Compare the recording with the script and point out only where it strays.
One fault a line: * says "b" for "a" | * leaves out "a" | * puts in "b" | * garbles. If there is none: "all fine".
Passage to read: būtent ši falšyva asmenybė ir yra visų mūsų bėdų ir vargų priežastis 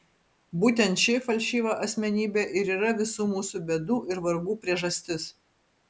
all fine